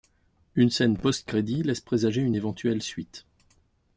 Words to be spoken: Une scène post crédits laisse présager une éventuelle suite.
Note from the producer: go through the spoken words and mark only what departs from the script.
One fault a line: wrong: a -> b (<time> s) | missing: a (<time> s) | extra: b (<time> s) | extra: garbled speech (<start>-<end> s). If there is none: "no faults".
no faults